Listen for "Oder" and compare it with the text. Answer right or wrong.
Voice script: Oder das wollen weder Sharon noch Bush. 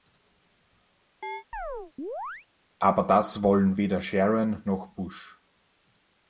wrong